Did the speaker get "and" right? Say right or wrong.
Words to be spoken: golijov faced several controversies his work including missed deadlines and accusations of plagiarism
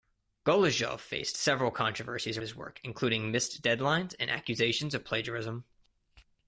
right